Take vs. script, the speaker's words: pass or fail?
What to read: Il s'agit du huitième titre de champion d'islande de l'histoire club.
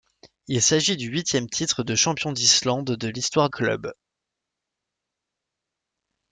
pass